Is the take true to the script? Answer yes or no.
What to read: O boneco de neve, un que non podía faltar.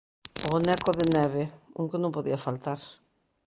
yes